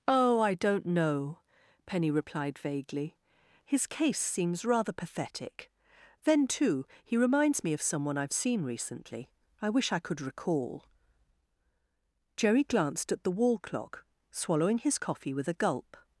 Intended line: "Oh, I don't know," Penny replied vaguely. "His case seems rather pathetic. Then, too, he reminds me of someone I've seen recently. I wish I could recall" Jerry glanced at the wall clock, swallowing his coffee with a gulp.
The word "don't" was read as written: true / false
true